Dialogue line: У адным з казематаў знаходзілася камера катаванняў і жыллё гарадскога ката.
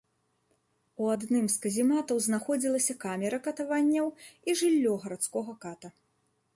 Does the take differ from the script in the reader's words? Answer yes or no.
no